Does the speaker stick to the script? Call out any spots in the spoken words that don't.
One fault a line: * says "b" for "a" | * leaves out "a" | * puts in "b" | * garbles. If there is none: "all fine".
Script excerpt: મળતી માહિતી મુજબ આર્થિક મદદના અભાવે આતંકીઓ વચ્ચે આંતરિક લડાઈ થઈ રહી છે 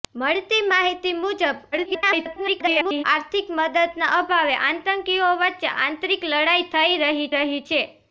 * garbles
* puts in "રહી"